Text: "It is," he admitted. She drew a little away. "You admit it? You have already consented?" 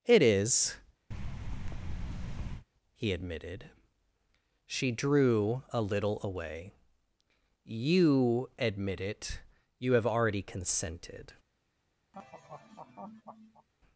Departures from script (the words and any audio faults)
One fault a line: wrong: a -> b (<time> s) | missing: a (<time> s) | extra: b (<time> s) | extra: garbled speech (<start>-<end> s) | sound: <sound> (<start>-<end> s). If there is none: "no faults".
sound: thud (1.1-2.7 s)
sound: laugh (12.1-13.7 s)